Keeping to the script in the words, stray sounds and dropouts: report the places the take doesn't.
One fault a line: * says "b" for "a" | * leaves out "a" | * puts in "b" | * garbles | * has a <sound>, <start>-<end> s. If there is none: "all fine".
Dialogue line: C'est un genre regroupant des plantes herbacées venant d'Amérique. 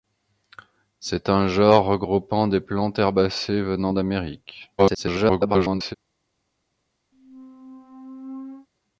* garbles
* has a squeak, 7.1-8.7 s